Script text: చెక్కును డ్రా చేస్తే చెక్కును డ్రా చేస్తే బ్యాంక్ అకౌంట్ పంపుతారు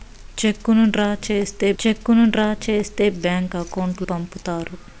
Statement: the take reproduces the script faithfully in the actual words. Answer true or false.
true